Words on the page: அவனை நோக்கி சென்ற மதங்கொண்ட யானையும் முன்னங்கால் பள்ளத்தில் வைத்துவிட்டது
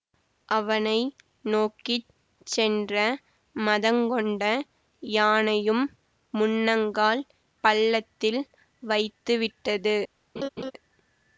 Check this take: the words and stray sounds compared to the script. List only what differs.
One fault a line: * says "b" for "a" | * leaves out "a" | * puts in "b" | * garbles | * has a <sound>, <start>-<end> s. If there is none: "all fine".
* has a laugh, 10.4-10.7 s